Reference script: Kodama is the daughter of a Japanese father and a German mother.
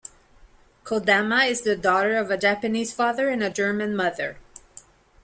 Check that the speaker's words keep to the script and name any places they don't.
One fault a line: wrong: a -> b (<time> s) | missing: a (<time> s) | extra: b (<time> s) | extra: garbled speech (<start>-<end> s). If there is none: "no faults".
no faults